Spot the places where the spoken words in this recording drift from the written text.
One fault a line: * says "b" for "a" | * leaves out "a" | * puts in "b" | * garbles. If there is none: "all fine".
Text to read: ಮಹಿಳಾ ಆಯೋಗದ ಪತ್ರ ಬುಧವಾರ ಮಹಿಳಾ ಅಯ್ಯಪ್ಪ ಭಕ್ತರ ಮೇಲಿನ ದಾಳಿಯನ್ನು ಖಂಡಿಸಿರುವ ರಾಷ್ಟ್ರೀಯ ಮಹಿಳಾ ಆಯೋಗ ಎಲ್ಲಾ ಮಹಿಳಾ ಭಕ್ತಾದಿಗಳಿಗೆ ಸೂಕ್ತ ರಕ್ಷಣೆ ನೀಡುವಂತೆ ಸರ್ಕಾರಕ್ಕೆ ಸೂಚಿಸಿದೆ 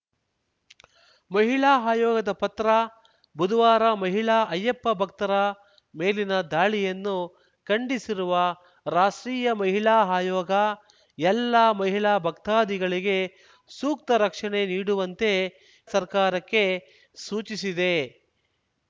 all fine